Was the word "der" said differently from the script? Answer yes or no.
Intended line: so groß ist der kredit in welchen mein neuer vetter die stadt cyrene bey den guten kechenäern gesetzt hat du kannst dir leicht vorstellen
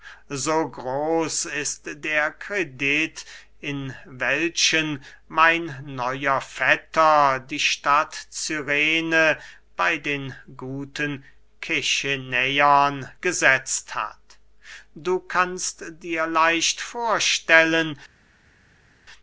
no